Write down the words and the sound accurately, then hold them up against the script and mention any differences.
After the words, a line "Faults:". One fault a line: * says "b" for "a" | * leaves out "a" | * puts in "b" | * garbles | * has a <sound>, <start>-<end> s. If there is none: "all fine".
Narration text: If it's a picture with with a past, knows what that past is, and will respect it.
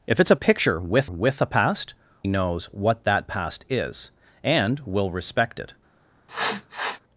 If it's a picture with with a past, knows what that past is, and will respect it.
Faults:
* has a sniff, 6.3-7.0 s